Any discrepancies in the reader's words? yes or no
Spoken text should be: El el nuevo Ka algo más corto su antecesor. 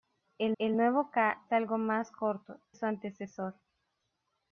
no